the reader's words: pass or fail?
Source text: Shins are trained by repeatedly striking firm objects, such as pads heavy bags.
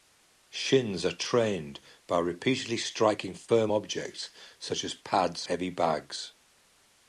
pass